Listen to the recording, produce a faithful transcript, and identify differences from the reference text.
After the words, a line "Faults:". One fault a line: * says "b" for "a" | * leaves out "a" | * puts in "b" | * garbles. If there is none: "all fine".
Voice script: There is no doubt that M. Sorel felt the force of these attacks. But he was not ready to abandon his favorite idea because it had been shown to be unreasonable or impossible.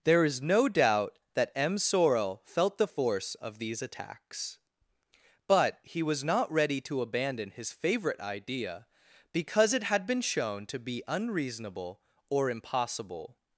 There is no doubt that M. Sorel felt the force of these attacks. But he was not ready to abandon his favorite idea because it had been shown to be unreasonable or impossible.
Faults:
all fine